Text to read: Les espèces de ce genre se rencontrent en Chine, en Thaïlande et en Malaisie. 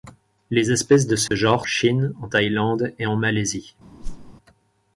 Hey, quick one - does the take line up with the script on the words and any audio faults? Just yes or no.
no